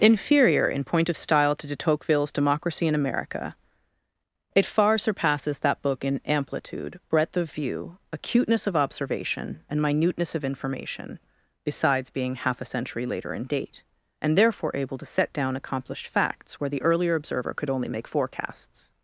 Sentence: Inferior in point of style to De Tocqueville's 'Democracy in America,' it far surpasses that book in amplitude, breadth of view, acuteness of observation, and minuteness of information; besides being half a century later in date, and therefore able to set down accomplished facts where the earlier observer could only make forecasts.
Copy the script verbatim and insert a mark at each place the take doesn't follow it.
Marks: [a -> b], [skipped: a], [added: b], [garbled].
Inferior in point of style to De Tocqueville's 'Democracy in America,' it far surpasses that book in amplitude, breadth of view, acuteness of observation, and minuteness of information; besides being half a century later in date, and therefore able to set down accomplished facts where the earlier observer could only make forecasts.